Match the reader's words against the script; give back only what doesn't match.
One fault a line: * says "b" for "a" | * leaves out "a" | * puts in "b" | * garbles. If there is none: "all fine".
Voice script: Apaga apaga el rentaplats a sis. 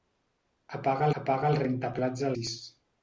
all fine